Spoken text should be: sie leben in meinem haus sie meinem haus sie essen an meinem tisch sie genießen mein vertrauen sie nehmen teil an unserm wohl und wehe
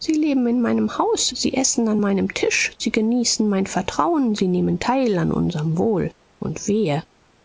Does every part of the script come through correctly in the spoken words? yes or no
no